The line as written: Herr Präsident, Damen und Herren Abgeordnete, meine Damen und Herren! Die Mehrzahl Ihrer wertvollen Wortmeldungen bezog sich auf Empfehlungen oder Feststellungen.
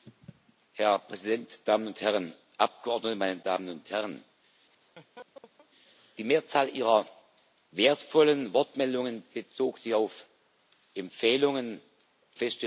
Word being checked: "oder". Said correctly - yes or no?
no